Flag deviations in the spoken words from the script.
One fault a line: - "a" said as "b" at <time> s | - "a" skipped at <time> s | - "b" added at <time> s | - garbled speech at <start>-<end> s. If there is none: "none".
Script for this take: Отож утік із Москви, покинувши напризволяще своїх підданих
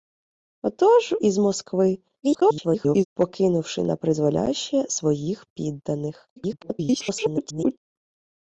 - "утік" skipped at 1.1 s
- garbled speech at 2.2-3.1 s
- garbled speech at 6.4-7.8 s